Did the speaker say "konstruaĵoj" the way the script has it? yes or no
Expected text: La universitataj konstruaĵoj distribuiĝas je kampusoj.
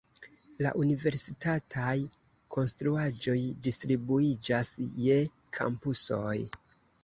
yes